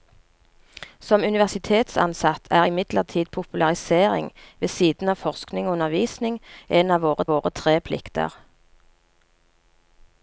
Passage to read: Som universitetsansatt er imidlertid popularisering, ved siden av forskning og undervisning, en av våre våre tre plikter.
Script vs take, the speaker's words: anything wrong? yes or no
no